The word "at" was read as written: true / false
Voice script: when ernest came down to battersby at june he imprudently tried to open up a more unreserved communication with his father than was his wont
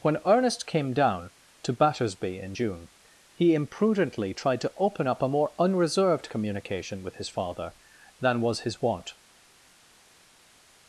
false